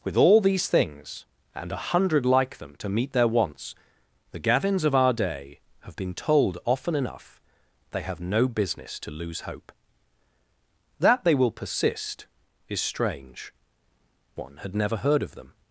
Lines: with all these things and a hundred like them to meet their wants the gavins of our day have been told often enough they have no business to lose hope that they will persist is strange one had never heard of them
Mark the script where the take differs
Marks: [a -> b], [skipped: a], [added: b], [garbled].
with all these things and a hundred like them to meet their wants the gavins of our day have been told often enough they have no business to lose hope that they will persist is strange one had never heard of them